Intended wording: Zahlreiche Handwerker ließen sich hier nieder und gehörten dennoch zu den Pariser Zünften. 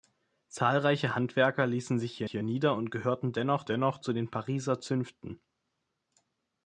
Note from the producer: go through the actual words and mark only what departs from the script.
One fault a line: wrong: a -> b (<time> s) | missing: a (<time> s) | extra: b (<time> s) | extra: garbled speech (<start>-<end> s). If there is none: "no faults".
extra: hier (2.3 s)
extra: dennoch (3.6 s)